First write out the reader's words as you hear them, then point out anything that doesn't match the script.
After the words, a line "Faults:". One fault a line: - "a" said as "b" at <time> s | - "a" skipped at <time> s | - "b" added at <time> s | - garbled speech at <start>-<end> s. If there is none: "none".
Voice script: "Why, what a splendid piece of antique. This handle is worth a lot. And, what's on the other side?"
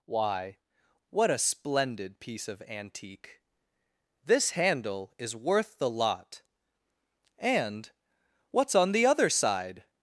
"Why, what a splendid piece of antique. This handle is worth the lot. And, what's on the other side?"
Faults:
- "a" said as "the" at 5.8 s